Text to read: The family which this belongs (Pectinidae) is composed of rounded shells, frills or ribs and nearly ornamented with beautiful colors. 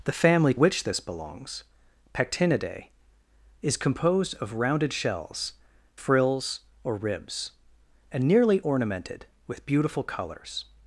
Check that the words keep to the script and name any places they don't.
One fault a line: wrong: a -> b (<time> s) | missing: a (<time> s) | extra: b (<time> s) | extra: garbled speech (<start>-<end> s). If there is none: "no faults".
no faults